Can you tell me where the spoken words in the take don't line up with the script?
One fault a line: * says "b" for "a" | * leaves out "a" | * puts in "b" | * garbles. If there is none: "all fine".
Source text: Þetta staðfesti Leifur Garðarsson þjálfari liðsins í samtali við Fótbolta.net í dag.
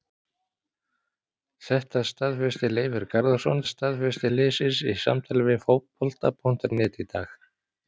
* says "staðfesti" for "þjálfari"